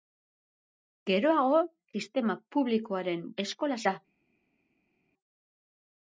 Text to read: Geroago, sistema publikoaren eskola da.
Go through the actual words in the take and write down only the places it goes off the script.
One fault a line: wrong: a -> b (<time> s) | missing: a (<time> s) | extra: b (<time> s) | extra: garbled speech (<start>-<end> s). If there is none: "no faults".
no faults